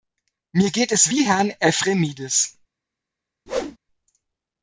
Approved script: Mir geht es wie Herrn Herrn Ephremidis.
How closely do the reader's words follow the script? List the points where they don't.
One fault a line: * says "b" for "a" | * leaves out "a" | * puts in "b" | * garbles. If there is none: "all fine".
* leaves out "Herrn"